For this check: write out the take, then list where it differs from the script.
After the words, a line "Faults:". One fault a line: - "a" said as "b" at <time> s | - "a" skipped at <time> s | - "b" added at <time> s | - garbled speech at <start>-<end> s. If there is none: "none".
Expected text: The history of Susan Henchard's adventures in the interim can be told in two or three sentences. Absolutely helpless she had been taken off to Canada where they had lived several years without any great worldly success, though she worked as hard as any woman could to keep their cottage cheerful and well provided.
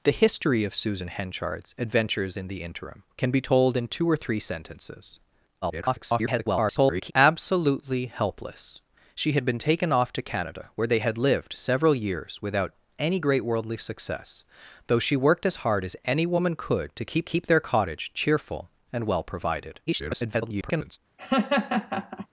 The history of Susan Henchard's adventures in the interim can be told in two or three sentences. [garbled] Absolutely helpless she had been taken off to Canada where they had lived several years without any great worldly success, though she worked as hard as any woman could to keep keep their cottage cheerful and well provided. [garbled]
Faults:
- garbled speech at 5.6-7.1 s
- "keep" added at 17.2 s
- garbled speech at 19.9-21.0 s